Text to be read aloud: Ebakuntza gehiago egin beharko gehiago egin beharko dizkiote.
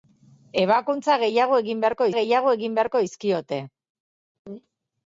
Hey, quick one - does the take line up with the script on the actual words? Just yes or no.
yes